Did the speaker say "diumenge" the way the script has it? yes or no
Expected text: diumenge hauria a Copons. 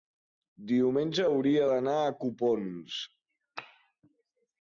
yes